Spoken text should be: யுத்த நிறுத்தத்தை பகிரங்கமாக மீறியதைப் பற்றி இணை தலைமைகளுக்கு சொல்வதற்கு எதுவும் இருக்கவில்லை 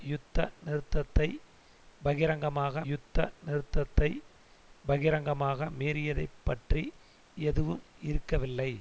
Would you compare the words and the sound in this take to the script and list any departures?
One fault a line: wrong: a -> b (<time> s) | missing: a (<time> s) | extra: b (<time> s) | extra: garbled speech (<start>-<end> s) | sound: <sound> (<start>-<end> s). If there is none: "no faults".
wrong: மீறியதைப் பற்றி இணை தலைமைகளுக்கு சொல்வதற்கு -> யுத்த நிறுத்தத்தை பகிரங்கமாக மீறியதைப் பற்றி (2.8 s)